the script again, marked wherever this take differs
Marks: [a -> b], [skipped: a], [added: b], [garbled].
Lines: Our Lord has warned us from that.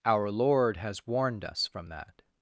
Our Lord has warned us from that.